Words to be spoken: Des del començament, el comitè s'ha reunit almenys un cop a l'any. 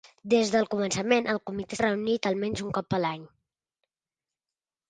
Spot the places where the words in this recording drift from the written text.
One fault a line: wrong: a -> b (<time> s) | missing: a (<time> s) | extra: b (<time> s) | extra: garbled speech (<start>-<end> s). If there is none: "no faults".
missing: s'ha (1.8 s)